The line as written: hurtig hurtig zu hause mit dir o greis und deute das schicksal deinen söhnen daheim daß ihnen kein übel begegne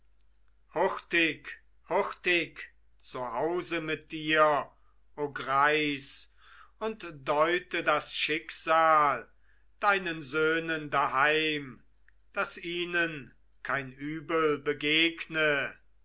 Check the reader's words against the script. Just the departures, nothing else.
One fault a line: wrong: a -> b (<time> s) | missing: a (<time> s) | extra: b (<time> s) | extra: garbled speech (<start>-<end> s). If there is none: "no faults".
no faults